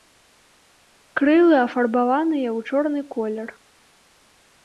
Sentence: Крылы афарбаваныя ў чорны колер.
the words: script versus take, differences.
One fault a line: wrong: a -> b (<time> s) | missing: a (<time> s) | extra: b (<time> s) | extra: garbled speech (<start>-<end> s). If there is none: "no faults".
no faults